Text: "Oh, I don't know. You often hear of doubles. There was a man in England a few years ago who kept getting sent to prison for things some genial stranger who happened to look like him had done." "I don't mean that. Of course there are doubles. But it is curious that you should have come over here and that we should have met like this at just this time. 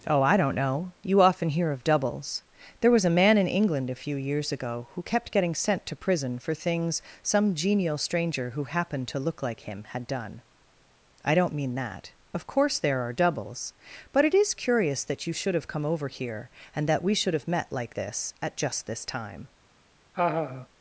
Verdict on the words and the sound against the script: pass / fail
fail